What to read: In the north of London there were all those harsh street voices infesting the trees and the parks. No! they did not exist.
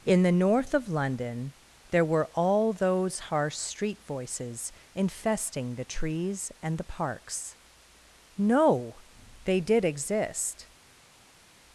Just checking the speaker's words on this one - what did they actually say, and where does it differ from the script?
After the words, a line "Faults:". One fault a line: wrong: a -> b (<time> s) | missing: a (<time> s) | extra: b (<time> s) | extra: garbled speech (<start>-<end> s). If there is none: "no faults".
In the north of London there were all those harsh street voices infesting the trees and the parks. No! they did exist.
Faults:
missing: not (9.8 s)